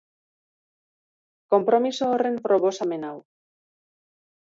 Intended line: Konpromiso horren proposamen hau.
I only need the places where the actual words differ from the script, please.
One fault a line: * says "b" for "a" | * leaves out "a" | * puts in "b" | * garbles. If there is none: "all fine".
all fine